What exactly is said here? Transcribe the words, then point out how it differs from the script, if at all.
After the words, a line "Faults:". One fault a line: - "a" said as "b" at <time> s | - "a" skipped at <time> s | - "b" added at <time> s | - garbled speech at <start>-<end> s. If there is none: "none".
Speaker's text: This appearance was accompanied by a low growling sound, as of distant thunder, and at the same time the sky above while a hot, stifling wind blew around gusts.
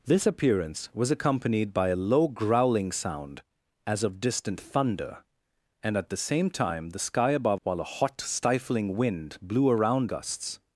This appearance was accompanied by a low growling sound, as of distant thunder, and at the same time the sky above while a hot, stifling wind blew around gusts.
Faults:
none